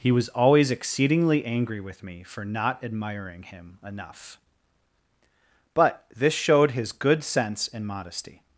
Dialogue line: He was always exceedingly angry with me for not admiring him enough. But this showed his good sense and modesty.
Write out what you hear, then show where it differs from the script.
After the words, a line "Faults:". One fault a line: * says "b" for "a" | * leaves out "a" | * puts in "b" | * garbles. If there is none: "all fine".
He was always exceedingly angry with me for not admiring him enough. But this showed his good sense and modesty.
Faults:
all fine